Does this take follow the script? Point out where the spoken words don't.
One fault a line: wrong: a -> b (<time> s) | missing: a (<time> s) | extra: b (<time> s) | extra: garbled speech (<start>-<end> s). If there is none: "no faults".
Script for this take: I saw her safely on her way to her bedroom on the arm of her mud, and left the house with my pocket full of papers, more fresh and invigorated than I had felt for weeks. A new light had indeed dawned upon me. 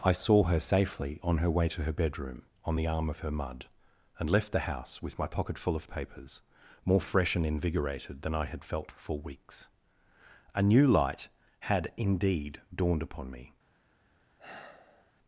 no faults